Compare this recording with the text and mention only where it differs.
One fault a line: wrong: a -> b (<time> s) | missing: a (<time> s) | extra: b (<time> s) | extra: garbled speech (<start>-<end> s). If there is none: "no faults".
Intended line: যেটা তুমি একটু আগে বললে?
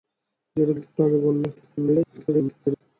missing: তুমি (0.7 s)
extra: garbled speech (1.6-2.8 s)